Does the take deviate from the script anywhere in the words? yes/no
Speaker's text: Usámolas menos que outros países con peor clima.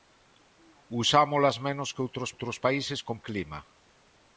yes